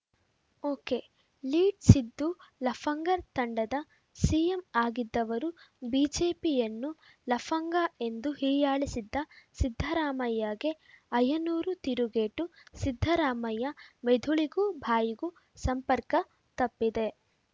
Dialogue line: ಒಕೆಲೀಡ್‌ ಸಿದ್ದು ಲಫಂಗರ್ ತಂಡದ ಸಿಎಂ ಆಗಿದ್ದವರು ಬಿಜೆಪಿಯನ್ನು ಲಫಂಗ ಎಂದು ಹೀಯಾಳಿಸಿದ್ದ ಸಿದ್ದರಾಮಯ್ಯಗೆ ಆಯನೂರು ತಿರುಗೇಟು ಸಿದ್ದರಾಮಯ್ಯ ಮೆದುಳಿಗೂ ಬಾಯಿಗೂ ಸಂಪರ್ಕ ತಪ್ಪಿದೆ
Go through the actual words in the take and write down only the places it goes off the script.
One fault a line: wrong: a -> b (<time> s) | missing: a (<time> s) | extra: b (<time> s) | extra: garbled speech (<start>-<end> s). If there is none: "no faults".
no faults